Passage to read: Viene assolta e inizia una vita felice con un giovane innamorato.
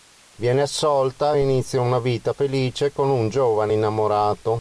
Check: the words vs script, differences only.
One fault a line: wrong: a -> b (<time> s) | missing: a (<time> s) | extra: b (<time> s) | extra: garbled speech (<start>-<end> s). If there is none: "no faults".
no faults